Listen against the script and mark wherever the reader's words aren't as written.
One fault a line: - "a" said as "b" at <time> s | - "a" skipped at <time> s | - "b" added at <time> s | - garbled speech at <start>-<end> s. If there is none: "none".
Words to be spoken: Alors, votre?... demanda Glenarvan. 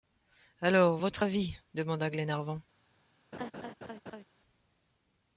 - "avis" added at 1.2 s